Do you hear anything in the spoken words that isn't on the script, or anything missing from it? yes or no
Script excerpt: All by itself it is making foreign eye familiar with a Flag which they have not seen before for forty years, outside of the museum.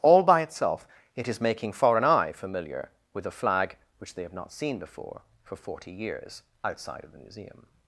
no